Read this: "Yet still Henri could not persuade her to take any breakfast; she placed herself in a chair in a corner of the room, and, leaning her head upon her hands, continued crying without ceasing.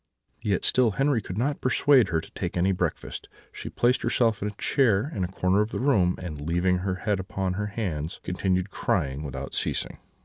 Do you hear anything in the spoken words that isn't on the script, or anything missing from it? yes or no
no